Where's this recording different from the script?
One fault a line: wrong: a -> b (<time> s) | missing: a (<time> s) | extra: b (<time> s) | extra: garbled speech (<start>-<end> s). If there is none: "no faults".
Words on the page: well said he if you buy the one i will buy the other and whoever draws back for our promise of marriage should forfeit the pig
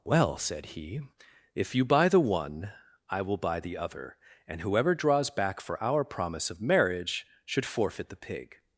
no faults